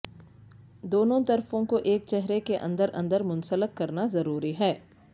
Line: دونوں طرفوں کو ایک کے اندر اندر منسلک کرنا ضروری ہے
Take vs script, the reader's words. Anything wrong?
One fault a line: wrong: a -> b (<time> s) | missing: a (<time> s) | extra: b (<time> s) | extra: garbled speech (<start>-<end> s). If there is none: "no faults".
extra: چہرے (2.1 s)